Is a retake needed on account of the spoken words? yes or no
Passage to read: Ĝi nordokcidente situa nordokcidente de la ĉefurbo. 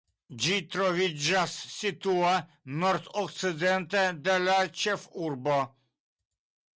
yes